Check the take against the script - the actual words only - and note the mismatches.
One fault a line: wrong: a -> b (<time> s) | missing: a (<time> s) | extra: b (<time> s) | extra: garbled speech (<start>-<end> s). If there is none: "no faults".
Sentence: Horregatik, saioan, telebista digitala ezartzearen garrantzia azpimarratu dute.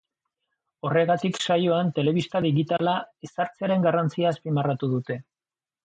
no faults